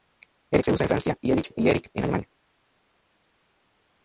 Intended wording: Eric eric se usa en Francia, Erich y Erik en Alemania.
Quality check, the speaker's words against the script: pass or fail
fail